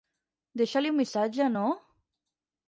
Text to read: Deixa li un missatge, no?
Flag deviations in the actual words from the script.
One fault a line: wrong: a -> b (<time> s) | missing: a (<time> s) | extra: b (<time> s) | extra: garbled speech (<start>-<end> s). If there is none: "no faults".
no faults